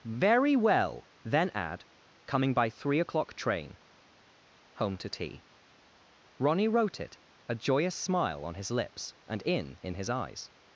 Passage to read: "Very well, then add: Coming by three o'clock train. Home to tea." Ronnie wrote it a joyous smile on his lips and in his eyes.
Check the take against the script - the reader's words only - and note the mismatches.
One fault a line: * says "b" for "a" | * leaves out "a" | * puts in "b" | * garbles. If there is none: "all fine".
* puts in "in"